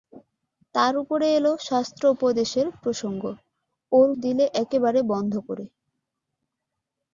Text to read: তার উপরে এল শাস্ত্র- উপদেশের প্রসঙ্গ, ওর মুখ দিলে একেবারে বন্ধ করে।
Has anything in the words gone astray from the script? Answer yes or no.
yes